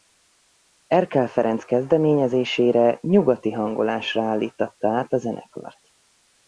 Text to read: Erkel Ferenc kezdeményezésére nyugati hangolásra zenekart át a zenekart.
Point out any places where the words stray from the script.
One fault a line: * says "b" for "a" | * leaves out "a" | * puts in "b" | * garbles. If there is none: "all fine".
* says "állíttatta" for "zenekart"